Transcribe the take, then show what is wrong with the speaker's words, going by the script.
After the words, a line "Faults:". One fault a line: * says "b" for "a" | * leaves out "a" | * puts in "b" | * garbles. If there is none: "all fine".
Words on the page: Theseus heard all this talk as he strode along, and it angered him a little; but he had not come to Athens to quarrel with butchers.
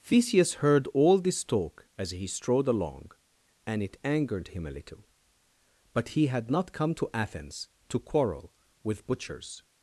Theseus heard all this talk as he strode along, and it angered him a little; but he had not come to Athens to quarrel with butchers.
Faults:
all fine